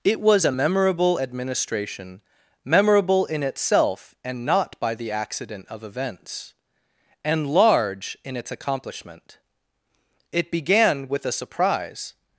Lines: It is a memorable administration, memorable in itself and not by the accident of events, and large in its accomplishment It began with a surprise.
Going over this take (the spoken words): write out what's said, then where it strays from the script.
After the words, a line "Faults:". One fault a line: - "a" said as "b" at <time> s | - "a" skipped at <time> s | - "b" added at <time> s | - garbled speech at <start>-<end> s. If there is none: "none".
It was a memorable administration, memorable in itself and not by the accident of events, and large in its accomplishment It began with a surprise.
Faults:
- "is" said as "was" at 0.2 s